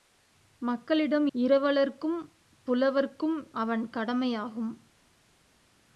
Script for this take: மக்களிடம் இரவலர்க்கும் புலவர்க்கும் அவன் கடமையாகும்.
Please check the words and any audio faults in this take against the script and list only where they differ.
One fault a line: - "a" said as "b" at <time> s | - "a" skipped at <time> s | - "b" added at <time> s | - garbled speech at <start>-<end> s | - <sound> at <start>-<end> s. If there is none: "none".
none